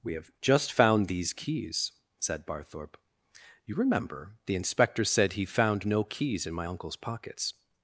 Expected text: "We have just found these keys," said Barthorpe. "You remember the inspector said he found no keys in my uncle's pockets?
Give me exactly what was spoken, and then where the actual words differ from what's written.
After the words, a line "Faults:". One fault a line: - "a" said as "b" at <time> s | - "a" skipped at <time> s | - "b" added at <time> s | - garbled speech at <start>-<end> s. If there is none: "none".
"We have just found these keys," said Barthorpe. "You remember the inspector said he found no keys in my uncle's pockets?
Faults:
none